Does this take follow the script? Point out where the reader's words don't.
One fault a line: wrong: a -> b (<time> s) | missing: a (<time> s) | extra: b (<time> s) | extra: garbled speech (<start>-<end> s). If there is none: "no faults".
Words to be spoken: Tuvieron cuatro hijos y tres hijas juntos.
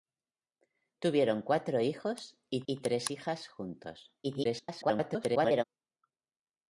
extra: y (2.7 s)
extra: garbled speech (4.2-5.6 s)